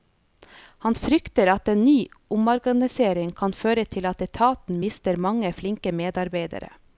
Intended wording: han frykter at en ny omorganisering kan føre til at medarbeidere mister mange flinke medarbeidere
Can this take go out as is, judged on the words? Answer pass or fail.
fail